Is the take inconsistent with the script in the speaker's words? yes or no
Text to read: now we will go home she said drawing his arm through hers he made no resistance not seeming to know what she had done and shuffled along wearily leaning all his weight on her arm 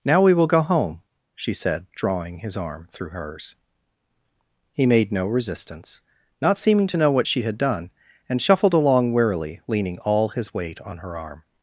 no